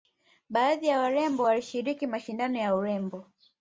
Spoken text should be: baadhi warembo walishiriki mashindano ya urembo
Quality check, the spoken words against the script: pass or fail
fail